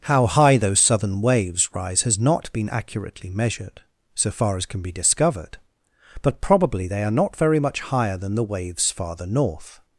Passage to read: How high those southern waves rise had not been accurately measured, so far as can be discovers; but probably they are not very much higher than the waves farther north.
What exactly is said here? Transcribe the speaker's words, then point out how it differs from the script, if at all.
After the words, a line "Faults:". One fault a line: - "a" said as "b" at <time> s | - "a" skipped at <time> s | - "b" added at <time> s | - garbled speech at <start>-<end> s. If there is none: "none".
How high those southern waves rise has not been accurately measured, so far as can be discovered; but probably they are not very much higher than the waves farther north.
Faults:
- "had" said as "has" at 2.0 s
- "discovers" said as "discovered" at 4.9 s